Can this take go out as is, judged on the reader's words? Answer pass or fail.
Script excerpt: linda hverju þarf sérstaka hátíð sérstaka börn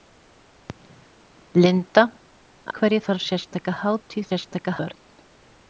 pass